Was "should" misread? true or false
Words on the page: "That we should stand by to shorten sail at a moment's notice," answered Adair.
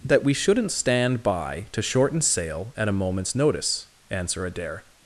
true